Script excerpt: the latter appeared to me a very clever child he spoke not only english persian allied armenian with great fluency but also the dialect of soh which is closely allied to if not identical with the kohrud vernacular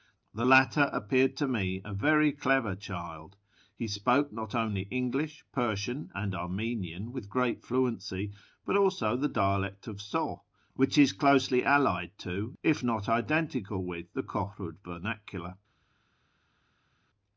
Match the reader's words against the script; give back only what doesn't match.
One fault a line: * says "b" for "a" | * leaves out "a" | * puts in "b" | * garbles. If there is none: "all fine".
* says "and" for "allied"